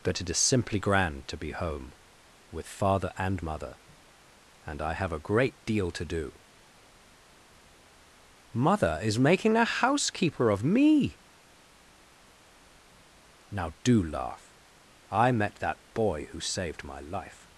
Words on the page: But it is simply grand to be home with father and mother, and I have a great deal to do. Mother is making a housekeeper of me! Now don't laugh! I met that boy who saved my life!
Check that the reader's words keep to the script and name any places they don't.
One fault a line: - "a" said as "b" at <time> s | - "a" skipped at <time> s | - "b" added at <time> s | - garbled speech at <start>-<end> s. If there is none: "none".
- "don't" said as "do" at 13.8 s